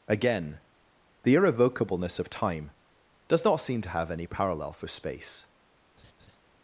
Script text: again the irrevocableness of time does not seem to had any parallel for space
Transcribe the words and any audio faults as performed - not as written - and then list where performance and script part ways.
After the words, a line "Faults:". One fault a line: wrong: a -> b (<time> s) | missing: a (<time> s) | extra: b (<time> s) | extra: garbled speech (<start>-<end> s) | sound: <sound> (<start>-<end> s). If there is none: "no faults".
again the irrevocableness of time does not seem to have any parallel for space
Faults:
wrong: had -> have (3.9 s)
sound: laugh (6.0-6.4 s)